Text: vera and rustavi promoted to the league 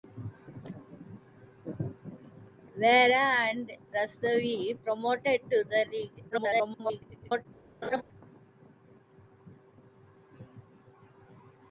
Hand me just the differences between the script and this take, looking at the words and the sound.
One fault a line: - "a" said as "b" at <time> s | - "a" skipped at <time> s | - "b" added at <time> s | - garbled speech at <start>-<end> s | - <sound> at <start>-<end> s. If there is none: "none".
- garbled speech at 6.3-7.5 s
- laugh at 7.8-8.0 s